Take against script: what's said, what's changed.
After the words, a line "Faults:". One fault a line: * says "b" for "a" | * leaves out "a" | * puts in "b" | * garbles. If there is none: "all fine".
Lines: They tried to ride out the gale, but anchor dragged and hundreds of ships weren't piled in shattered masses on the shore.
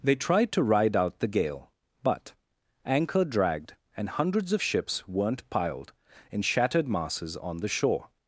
They tried to ride out the gale, but anchor dragged and hundreds of ships weren't piled in shattered masses on the shore.
Faults:
all fine